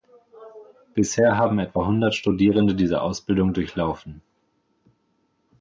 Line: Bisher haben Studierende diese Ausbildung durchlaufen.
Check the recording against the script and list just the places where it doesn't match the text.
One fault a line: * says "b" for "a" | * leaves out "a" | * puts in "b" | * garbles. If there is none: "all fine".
* puts in "etwa hundert"